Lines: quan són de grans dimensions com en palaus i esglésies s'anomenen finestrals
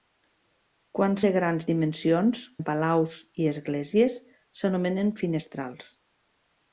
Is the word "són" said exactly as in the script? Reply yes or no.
no